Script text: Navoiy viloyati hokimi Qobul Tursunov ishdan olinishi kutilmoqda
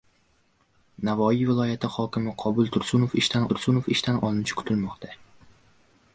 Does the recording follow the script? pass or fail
fail